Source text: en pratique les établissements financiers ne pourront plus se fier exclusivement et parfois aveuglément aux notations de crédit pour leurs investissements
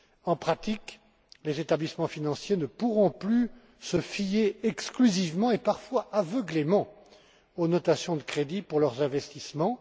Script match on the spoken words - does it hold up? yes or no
yes